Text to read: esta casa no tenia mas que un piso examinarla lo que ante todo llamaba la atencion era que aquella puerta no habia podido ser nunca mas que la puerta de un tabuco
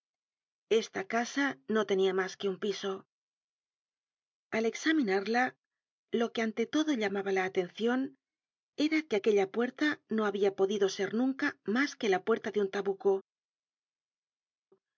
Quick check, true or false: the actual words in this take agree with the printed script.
false